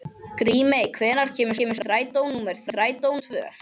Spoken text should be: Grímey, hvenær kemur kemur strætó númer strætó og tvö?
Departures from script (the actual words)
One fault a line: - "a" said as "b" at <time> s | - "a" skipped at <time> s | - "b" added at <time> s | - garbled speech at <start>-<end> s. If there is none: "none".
none